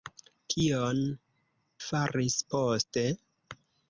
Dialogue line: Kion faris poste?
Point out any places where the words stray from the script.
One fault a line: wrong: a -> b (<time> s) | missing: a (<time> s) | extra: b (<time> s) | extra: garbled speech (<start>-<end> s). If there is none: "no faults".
no faults